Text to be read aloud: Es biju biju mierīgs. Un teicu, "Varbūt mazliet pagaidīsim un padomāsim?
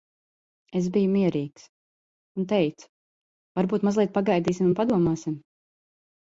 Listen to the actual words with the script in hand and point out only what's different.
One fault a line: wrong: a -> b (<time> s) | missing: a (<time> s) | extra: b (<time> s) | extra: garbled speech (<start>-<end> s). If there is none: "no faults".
missing: biju (1.1 s)